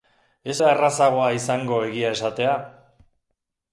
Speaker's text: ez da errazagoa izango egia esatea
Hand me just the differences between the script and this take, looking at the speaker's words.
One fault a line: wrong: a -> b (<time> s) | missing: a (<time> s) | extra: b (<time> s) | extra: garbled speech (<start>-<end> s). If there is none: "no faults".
no faults